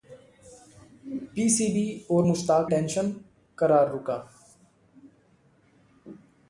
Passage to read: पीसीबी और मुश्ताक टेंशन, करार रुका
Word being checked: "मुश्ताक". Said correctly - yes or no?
yes